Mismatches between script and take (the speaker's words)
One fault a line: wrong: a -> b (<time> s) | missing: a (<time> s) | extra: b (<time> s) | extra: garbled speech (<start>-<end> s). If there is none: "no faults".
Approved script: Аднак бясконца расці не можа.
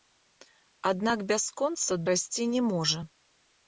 no faults